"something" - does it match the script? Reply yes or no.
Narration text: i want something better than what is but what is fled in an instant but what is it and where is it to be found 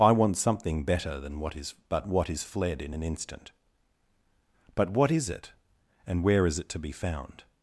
yes